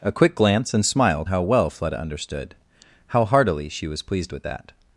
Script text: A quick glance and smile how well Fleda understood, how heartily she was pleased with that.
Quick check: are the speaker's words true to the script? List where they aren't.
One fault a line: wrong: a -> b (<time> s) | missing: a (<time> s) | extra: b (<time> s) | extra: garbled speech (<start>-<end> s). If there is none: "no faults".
no faults